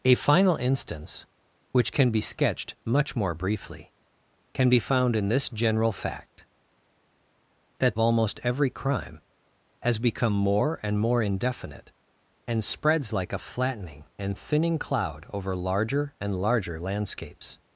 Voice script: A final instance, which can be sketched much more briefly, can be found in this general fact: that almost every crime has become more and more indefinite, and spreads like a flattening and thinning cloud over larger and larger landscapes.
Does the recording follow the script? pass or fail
pass